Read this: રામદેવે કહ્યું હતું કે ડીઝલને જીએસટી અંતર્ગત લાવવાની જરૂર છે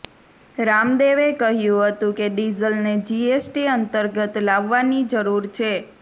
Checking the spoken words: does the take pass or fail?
pass